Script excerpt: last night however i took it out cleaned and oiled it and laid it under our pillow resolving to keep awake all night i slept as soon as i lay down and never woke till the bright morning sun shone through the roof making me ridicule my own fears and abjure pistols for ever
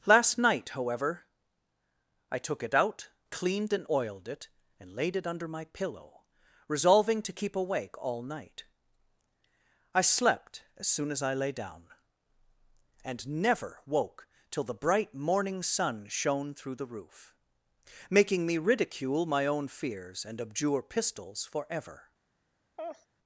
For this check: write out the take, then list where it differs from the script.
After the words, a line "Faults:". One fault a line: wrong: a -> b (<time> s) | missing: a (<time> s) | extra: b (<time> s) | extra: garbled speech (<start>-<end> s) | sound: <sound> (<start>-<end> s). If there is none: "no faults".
last night however i took it out cleaned and oiled it and laid it under my pillow resolving to keep awake all night i slept as soon as i lay down and never woke till the bright morning sun shone through the roof making me ridicule my own fears and abjure pistols for ever
Faults:
wrong: our -> my (5.5 s)
sound: laugh (22.8-23.1 s)